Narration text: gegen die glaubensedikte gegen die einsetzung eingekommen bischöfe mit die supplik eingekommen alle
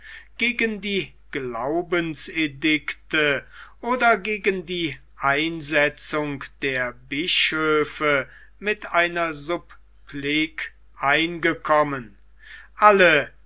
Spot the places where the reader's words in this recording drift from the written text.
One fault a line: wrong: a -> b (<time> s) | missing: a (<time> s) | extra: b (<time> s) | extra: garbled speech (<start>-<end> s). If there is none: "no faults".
extra: oder (3.8 s)
wrong: eingekommen -> der (6.6 s)
wrong: die -> einer (8.9 s)